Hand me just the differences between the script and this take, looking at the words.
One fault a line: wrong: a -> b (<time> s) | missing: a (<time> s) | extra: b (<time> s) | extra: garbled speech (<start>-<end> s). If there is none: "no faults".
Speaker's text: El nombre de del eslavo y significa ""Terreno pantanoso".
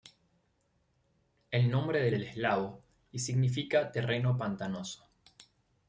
no faults